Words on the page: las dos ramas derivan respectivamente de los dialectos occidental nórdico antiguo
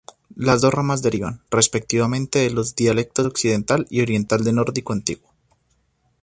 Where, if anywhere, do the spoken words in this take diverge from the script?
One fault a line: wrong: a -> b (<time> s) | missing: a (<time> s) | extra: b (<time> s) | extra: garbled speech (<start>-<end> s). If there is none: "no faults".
extra: y oriental del (3.9 s)